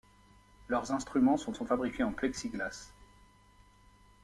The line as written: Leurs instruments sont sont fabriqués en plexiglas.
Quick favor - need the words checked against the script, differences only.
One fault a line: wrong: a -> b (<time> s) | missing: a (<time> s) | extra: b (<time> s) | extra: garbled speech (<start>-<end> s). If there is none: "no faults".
no faults